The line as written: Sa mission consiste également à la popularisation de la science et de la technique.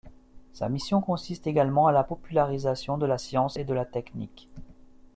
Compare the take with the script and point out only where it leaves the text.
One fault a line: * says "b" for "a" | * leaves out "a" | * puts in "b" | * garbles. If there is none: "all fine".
all fine